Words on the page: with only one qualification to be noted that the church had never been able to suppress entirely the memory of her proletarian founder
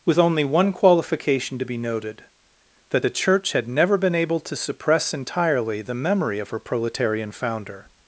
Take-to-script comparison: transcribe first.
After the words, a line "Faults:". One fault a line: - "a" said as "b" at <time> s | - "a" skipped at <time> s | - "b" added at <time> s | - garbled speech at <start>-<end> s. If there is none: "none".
with only one qualification to be noted that the church had never been able to suppress entirely the memory of her proletarian founder
Faults:
none